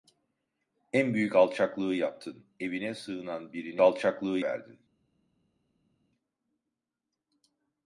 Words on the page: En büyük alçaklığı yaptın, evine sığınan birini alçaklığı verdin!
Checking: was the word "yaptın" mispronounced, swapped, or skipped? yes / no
no